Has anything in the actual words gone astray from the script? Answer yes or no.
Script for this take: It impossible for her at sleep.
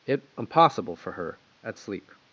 no